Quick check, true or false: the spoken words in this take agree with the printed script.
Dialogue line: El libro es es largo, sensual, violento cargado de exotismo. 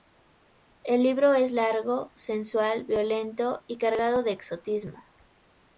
false